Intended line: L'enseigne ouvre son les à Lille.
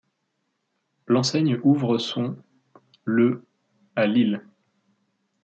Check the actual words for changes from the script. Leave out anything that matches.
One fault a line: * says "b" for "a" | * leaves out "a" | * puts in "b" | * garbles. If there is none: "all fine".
* says "le" for "les"